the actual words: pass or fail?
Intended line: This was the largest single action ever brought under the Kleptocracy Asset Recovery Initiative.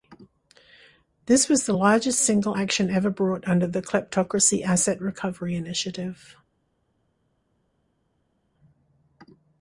pass